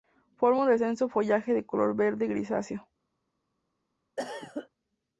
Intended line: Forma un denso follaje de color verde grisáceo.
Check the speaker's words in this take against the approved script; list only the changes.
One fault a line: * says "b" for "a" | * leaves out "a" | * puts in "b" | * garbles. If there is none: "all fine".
all fine